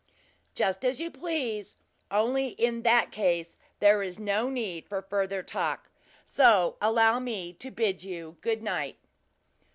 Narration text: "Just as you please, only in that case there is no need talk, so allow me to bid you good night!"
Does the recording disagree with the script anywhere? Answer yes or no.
yes